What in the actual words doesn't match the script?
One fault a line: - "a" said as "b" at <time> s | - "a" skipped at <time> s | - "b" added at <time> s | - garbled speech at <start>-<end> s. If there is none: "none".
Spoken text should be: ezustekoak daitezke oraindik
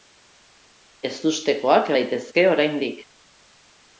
none